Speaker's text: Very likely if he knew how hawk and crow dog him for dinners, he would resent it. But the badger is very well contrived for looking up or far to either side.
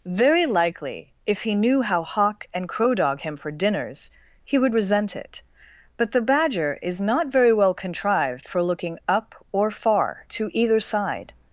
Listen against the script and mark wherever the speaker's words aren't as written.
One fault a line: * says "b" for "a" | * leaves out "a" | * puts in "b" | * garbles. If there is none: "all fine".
* puts in "not"